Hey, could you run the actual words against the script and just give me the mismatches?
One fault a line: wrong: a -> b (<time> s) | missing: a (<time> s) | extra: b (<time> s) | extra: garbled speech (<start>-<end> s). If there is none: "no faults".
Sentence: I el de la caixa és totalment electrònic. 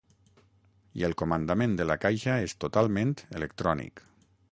extra: comandament (1.2 s)